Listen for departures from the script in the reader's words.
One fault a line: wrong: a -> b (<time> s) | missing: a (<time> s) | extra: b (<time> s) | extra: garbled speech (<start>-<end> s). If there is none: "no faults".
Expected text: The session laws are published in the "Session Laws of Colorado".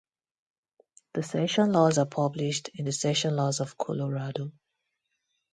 no faults